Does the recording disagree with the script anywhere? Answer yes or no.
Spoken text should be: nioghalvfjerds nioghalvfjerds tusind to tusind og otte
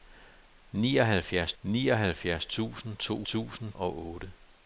no